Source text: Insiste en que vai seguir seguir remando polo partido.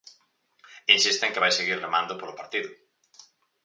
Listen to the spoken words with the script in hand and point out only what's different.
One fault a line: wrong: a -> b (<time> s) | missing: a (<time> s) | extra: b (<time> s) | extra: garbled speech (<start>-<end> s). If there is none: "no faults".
missing: seguir (1.8 s)